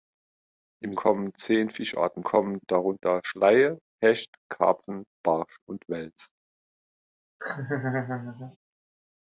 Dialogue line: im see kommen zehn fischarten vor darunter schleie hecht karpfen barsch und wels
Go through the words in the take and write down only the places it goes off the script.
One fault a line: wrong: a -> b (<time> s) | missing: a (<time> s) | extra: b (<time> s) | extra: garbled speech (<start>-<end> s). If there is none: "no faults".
missing: see (0.9 s)
wrong: vor -> kommen (2.2 s)